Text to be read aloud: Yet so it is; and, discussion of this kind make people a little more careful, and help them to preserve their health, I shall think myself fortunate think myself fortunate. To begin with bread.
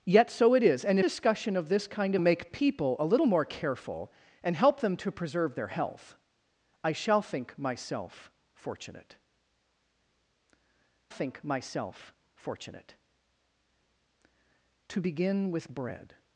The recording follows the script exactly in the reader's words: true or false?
true